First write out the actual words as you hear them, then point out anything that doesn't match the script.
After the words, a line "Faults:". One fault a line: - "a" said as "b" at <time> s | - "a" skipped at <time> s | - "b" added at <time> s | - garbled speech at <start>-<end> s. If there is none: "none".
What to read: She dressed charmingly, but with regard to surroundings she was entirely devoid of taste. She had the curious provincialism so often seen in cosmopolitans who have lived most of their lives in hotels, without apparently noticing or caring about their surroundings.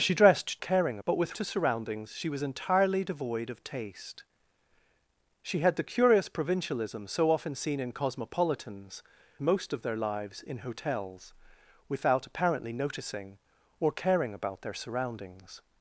She dressed caring, but with to surroundings she was entirely devoid of taste. She had the curious provincialism so often seen in cosmopolitans most of their lives in hotels, without apparently noticing or caring about their surroundings.
Faults:
- "charmingly" said as "caring" at 0.6 s
- "regard" skipped at 1.4 s
- "who have lived" skipped at 9.0 s